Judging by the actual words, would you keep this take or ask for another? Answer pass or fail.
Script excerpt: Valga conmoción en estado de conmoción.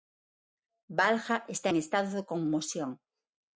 fail